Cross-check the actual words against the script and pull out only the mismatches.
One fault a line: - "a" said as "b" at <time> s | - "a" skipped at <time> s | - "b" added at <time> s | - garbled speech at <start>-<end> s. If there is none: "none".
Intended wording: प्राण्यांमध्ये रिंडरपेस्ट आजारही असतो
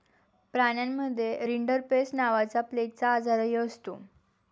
- "नावाचा प्लेगचा" added at 2.1 s